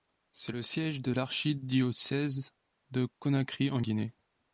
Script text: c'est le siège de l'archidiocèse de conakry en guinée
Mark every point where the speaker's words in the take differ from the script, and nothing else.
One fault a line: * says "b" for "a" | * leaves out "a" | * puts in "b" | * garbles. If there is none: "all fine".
all fine